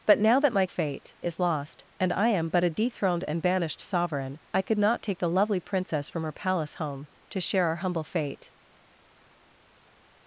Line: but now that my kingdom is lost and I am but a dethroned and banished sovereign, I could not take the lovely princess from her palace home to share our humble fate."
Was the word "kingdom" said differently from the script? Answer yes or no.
yes